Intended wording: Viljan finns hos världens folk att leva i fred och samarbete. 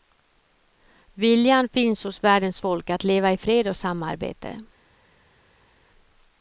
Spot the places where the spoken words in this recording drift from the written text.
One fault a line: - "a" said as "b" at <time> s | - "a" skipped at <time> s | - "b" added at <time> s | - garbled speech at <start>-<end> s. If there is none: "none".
none